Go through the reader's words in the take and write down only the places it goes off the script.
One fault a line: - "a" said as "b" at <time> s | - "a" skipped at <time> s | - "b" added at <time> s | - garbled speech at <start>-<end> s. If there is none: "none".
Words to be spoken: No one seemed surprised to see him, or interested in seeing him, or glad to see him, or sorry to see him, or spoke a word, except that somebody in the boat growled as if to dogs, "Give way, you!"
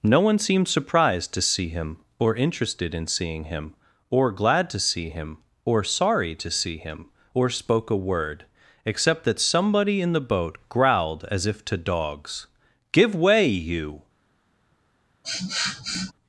none